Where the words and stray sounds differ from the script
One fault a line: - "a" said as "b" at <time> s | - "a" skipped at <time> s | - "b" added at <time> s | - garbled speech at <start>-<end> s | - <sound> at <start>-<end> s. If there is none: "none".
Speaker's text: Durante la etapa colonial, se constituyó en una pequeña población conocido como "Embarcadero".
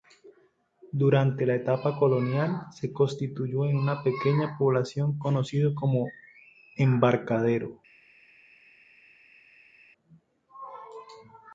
none